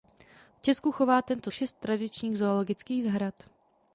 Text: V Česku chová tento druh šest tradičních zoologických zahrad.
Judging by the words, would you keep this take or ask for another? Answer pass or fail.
fail